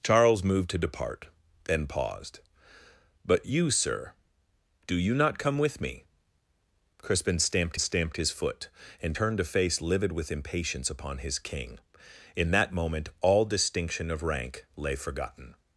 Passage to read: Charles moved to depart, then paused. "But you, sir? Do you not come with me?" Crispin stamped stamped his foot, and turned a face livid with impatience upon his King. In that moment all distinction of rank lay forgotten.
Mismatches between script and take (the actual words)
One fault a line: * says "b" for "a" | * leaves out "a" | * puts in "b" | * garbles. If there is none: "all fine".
all fine